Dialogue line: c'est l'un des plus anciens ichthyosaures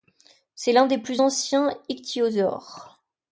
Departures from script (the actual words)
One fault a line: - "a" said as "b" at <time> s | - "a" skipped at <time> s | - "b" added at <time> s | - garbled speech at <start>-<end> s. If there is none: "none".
none